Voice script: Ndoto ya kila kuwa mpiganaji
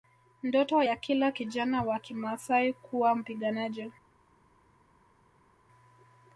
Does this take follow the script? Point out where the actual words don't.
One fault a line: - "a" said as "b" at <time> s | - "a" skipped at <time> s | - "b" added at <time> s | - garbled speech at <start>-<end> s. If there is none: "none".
- "kijana wa Kimaasai" added at 1.3 s